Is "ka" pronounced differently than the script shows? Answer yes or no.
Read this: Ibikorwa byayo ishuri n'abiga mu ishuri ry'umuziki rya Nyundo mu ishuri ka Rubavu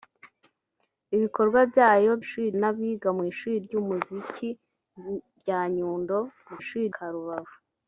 no